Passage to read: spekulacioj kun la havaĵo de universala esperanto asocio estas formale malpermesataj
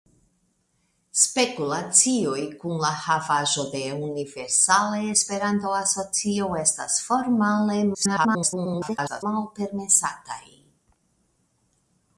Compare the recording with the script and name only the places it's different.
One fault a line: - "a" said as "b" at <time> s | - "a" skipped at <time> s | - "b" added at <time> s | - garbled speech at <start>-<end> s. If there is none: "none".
- garbled speech at 7.9-9.2 s